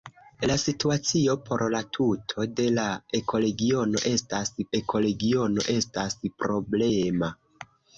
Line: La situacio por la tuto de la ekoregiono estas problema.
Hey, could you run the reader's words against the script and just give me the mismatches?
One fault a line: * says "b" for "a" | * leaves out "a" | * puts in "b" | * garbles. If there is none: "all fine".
* puts in "ekoregiono estas"